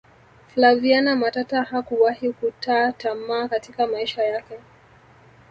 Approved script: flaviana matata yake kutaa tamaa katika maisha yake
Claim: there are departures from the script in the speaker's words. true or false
true